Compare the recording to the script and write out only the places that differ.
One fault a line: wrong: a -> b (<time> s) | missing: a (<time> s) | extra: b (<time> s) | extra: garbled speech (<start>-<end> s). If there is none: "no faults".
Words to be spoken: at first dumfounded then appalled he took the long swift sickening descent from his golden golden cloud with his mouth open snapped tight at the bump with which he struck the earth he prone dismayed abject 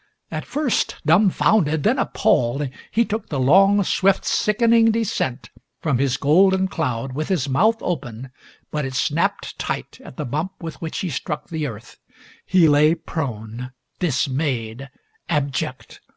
missing: golden (6.7 s)
extra: but it (8.7 s)
extra: lay (12.7 s)